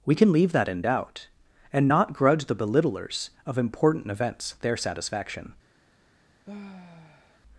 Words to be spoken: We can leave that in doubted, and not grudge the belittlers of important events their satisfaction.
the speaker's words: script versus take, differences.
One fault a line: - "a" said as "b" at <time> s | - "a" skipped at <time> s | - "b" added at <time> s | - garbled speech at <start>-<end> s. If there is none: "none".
- "doubted" said as "doubt" at 0.8 s